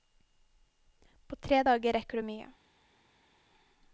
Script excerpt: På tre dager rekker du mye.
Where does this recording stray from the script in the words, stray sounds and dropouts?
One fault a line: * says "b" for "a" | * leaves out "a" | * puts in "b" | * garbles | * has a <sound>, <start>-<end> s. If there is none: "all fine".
all fine